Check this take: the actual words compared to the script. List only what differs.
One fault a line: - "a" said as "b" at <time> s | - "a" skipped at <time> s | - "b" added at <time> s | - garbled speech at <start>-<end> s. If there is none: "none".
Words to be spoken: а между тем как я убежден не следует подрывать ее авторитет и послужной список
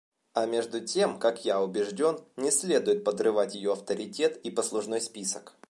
none